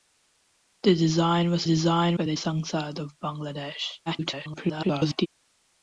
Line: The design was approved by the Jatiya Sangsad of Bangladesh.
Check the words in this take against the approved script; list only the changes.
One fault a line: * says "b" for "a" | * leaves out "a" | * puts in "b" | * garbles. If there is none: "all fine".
* says "design" for "approved"
* leaves out "Jatiya"
* garbles